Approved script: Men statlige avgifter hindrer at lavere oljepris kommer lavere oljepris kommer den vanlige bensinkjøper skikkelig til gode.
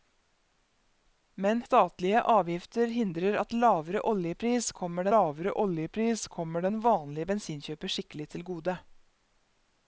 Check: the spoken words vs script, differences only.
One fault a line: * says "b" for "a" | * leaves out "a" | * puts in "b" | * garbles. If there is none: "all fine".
all fine